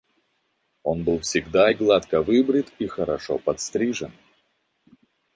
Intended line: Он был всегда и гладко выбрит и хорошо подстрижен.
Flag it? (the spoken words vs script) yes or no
no